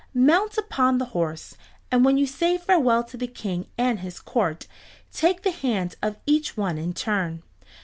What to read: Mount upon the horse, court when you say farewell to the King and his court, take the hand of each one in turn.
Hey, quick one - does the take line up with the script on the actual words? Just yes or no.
no